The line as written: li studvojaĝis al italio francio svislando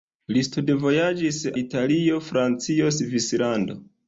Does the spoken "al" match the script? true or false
false